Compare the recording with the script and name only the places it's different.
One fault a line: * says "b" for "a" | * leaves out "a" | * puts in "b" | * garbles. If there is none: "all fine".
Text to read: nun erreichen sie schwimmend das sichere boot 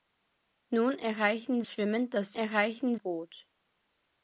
* leaves out "sie"
* says "erreichen" for "sichere"